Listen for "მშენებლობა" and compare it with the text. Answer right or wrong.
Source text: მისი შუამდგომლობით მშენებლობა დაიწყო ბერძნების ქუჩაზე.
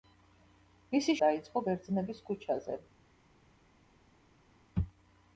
wrong